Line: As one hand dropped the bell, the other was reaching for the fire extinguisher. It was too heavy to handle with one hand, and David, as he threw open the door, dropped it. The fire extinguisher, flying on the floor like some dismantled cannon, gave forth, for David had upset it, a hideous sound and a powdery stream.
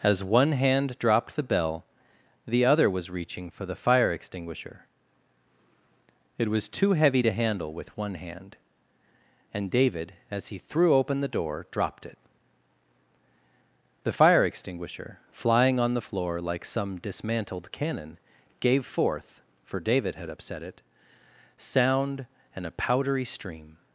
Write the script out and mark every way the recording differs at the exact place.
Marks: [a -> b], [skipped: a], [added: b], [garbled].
As one hand dropped the bell, the other was reaching for the fire extinguisher. It was too heavy to handle with one hand, and David, as he threw open the door, dropped it. The fire extinguisher, flying on the floor like some dismantled cannon, gave forth, for David had upset it, [skipped: a hideous] sound and a powdery stream.